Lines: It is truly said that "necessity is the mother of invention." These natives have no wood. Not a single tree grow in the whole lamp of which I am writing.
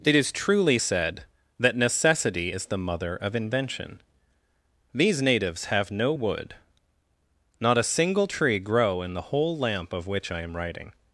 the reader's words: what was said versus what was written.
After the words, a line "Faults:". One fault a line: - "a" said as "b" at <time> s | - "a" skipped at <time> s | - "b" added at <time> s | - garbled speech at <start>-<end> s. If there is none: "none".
It is truly said that "necessity is the mother of invention." These natives have no wood. Not a single tree grow in the whole lamp of which I am writing.
Faults:
none